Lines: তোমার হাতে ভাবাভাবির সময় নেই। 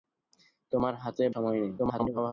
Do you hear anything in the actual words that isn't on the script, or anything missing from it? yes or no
yes